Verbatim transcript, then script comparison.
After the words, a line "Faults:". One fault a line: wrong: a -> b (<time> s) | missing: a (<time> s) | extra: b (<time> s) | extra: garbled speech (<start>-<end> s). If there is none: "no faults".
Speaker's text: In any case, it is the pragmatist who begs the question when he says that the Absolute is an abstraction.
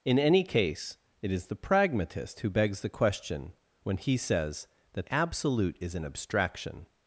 In any case, it is the pragmatist who begs the question when he says that Absolute is an abstraction.
Faults:
missing: the (5.1 s)